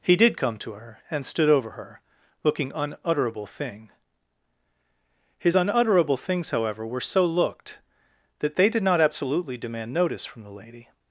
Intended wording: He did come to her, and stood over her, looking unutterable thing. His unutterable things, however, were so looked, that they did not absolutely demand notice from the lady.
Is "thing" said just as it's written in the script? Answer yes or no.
yes